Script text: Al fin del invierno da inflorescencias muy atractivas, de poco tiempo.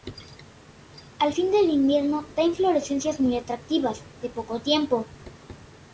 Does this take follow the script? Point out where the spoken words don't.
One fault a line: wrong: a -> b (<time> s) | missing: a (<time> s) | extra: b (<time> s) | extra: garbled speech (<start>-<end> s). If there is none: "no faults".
no faults